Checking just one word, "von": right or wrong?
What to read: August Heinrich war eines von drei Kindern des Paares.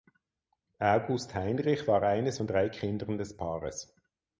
right